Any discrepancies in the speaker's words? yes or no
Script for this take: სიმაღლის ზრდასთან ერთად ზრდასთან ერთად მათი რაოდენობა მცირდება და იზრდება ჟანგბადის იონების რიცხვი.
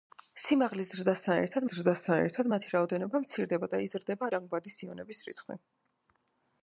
no